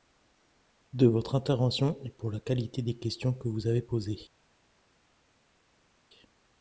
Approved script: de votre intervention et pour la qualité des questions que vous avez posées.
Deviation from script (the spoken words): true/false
false